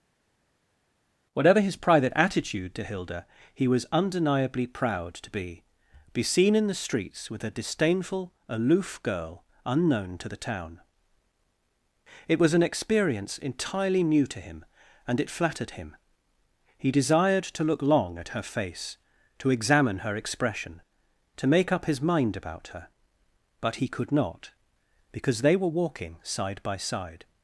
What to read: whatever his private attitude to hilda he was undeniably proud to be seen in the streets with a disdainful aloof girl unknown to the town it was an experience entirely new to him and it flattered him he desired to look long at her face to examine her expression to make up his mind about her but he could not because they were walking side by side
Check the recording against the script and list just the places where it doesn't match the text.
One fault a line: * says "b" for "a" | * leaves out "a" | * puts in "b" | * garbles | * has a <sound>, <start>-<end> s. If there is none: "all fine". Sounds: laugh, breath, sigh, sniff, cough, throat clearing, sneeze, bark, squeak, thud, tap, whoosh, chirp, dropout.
* puts in "be"